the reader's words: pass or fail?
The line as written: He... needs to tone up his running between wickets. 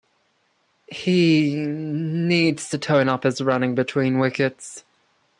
pass